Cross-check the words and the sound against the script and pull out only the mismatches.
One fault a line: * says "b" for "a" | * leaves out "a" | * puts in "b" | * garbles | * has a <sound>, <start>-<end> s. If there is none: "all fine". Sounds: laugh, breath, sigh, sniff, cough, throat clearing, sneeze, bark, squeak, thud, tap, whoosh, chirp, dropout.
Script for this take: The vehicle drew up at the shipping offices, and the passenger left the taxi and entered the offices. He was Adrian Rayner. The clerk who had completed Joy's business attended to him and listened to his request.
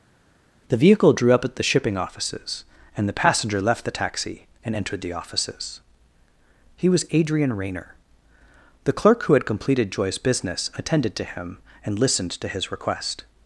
all fine